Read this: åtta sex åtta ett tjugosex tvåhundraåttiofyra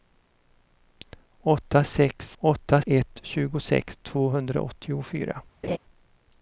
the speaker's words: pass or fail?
pass